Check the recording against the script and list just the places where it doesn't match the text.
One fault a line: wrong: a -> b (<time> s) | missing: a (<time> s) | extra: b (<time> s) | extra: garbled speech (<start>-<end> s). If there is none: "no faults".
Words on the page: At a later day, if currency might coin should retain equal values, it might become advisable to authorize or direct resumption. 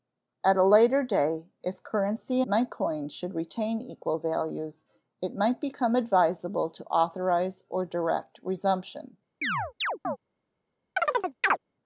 no faults